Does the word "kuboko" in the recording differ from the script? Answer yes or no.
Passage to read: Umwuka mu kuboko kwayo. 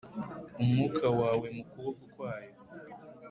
no